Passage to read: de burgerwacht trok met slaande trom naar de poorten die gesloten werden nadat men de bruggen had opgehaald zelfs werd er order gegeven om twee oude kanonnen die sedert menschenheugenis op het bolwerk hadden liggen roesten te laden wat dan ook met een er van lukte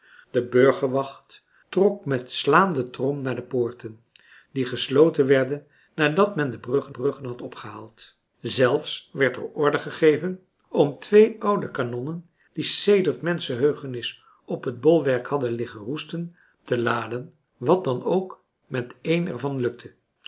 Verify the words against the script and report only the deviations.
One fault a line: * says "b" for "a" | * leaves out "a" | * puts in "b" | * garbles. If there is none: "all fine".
* puts in "bruggen"